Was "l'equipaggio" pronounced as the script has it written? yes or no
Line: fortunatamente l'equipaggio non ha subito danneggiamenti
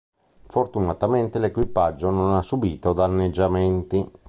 yes